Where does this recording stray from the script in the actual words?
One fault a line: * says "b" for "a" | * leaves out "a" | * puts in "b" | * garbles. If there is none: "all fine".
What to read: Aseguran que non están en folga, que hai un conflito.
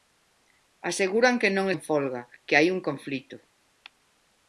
* leaves out "están"